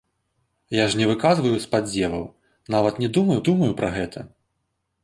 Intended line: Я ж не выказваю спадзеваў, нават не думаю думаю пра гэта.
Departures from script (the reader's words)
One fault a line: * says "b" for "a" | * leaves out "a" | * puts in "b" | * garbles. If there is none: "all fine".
all fine